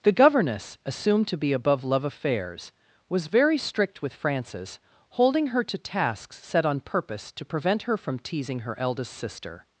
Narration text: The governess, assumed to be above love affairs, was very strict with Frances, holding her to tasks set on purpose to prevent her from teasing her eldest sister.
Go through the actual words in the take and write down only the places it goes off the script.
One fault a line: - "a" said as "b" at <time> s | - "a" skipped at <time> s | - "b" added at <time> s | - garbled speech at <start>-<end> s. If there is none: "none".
none